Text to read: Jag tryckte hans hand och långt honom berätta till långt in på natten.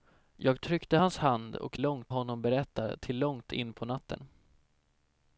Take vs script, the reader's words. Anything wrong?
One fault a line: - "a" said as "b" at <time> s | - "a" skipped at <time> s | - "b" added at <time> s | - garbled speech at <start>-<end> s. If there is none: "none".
none